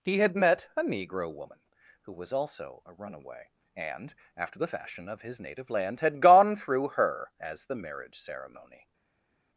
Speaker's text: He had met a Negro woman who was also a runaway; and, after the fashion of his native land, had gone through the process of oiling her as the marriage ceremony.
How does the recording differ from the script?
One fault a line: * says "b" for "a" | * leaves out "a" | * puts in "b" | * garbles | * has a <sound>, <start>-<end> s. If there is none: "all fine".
* leaves out "the process of oiling"